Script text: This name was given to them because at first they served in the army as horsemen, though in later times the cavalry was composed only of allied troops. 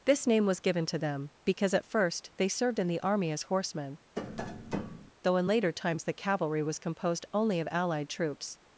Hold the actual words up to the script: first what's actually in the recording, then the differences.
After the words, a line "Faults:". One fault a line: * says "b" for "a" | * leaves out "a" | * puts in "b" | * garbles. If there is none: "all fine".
This name was given to them because at first they served in the army as horsemen, though in later times the cavalry was composed only of allied troops.
Faults:
all fine